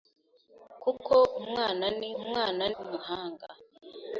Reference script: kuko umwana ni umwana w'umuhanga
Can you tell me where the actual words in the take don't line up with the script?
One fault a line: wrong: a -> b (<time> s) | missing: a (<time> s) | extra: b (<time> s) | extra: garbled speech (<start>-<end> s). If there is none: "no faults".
no faults